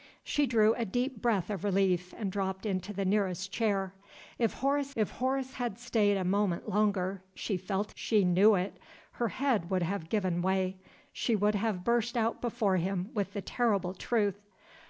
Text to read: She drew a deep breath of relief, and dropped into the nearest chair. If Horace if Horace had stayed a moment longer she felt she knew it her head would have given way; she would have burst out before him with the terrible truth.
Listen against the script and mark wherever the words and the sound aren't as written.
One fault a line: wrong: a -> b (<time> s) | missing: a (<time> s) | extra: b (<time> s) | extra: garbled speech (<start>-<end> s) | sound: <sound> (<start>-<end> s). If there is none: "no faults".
no faults